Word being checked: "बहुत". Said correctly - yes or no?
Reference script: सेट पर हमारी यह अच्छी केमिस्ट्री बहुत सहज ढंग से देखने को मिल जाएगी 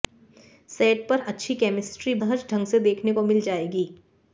no